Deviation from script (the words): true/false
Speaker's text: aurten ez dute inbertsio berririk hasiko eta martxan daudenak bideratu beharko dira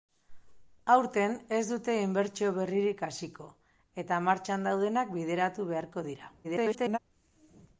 true